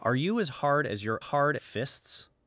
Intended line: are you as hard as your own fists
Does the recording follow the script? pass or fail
fail